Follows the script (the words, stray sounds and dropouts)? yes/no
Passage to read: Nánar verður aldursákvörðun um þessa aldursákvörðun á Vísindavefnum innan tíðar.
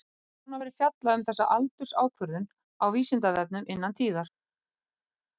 no